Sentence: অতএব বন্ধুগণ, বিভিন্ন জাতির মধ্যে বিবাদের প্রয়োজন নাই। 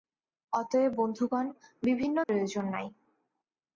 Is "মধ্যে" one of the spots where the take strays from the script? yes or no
yes